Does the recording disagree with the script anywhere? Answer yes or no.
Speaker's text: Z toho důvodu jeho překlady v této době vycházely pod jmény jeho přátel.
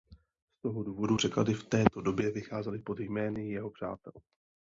yes